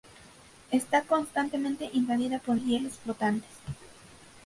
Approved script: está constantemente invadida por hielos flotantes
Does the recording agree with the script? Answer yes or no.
yes